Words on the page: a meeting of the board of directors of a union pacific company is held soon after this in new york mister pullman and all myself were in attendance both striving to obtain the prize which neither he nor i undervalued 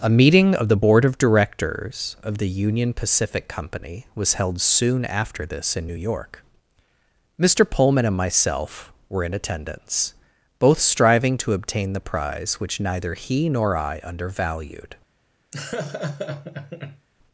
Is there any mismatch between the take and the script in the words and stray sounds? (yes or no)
yes